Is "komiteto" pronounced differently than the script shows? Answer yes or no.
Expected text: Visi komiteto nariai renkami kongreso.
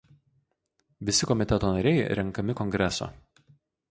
no